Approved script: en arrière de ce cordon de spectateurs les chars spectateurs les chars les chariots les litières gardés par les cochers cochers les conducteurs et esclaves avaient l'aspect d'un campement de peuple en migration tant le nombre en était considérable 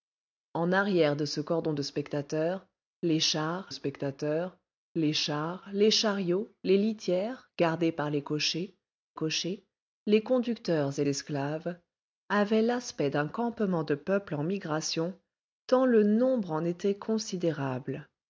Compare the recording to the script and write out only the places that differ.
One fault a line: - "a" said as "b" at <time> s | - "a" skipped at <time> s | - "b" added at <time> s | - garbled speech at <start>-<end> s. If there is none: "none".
none